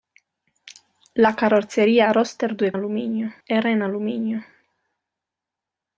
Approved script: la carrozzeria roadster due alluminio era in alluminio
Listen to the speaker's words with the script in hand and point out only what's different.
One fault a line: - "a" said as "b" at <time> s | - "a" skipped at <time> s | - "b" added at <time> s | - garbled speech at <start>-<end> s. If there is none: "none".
none